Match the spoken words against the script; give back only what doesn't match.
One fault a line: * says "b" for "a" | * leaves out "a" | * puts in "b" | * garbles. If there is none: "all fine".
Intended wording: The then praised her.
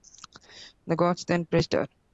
* puts in "gods"